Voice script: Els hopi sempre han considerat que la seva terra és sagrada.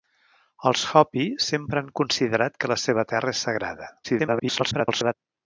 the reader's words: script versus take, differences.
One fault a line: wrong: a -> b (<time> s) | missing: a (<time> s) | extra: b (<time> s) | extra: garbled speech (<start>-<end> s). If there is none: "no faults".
extra: garbled speech (4.0-5.1 s)